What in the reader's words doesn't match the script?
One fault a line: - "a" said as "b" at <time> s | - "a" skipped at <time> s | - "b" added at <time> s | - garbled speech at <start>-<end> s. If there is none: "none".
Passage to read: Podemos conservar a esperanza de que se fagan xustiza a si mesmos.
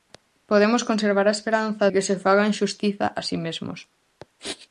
- "de" skipped at 1.9 s